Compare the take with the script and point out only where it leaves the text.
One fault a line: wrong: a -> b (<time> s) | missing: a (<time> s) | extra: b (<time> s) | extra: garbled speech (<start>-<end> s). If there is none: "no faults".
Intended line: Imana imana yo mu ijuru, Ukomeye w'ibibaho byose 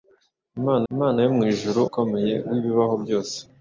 no faults